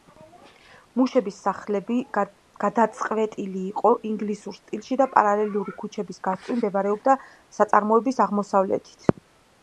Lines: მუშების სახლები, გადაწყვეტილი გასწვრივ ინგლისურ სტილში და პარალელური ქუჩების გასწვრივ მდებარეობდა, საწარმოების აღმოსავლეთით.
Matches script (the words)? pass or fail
fail